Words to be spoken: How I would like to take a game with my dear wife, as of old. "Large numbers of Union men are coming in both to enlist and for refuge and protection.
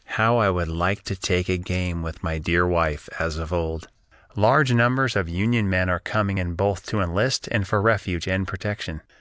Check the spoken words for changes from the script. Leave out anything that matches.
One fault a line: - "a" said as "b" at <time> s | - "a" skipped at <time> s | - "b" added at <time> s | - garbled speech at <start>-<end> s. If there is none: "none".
none